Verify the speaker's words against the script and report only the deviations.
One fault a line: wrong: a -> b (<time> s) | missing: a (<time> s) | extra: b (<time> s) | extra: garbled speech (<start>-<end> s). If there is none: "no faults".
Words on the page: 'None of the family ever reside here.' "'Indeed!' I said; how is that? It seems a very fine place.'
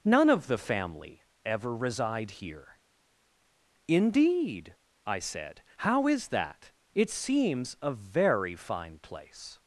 no faults